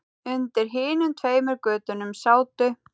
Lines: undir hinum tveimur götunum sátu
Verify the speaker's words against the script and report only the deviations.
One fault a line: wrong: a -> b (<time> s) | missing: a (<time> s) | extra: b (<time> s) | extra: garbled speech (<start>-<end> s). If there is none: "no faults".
no faults